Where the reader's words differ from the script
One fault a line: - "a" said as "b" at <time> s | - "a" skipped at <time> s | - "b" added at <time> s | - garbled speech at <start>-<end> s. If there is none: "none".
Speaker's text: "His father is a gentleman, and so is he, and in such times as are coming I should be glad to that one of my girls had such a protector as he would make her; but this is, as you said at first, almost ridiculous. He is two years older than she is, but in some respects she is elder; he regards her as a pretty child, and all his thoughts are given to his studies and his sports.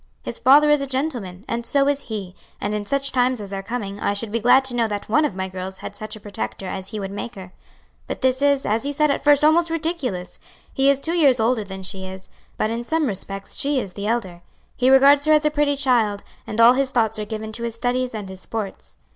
- "know" added at 4.8 s
- "the" added at 13.9 s